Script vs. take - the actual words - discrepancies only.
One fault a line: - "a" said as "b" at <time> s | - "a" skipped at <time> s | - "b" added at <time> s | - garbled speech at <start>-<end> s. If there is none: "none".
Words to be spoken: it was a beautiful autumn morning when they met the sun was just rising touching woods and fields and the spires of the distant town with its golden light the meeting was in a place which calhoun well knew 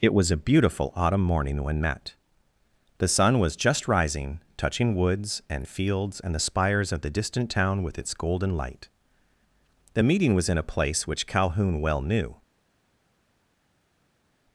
- "they" skipped at 1.8 s